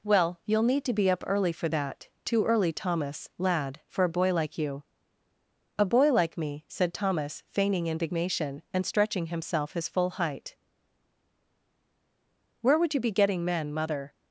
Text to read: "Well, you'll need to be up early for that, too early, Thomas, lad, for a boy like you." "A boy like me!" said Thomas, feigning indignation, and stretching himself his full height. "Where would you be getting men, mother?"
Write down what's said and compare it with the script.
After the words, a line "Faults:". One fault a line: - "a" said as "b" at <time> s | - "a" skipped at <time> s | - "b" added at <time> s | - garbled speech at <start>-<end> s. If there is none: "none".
"Well, you'll need to be up early for that, too early, Thomas, lad, for a boy like you." "A boy like me!" said Thomas, feigning indignation, and stretching himself his full height. "Where would you be getting men, mother?"
Faults:
none